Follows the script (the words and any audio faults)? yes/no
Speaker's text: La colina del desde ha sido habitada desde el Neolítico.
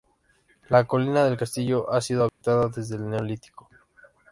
no